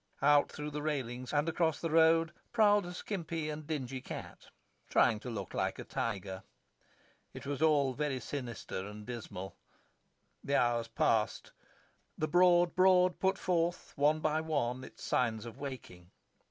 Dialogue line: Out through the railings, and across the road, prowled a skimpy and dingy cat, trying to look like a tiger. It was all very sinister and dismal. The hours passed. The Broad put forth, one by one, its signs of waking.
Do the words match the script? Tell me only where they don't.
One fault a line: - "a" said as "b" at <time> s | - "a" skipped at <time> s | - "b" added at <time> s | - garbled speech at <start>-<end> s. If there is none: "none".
- "Broad" added at 12.7 s